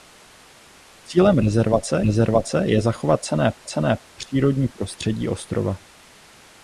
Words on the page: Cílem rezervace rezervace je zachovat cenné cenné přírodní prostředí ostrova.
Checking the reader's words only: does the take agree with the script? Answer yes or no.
yes